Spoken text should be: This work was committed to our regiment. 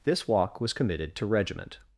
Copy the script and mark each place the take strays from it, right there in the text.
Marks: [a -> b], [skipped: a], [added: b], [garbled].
This [work -> walk] was committed to [skipped: our] regiment.